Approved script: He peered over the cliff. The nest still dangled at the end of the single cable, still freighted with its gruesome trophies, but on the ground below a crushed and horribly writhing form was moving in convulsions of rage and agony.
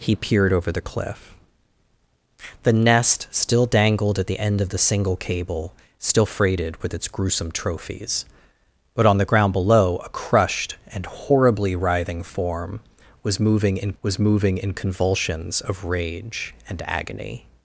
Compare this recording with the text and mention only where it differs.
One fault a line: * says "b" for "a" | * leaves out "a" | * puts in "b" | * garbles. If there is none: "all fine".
* puts in "was moving in"